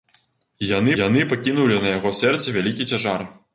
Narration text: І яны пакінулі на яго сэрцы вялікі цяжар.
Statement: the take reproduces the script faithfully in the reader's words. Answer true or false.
false